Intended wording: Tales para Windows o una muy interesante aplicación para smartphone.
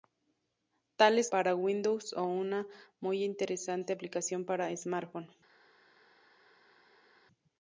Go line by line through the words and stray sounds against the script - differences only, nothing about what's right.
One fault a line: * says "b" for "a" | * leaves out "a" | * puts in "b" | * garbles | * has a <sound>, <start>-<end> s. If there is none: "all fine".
all fine